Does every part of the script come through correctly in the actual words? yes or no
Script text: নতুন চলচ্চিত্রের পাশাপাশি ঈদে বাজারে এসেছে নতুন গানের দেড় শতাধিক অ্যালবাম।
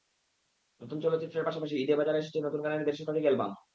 yes